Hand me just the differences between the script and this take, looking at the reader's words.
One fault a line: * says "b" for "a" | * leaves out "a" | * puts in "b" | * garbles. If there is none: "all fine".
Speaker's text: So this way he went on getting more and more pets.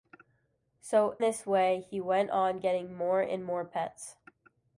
all fine